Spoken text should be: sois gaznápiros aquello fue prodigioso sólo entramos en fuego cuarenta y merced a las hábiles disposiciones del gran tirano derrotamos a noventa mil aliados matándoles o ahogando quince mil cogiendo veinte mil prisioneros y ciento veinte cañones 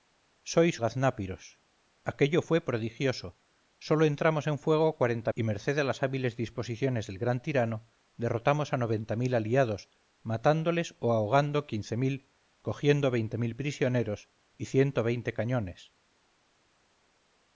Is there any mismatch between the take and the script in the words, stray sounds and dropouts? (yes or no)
no